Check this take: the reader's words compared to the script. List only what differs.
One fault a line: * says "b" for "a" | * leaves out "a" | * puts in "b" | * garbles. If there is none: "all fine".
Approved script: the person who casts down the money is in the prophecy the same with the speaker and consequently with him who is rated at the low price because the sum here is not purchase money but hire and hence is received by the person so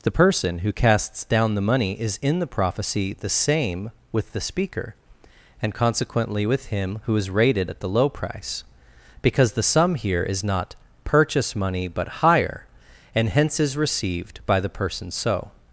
all fine